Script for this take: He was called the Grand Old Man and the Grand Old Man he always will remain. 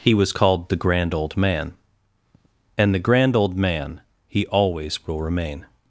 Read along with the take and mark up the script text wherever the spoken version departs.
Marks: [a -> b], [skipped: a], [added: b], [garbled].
He was called the Grand Old Man and the Grand Old Man he always will remain.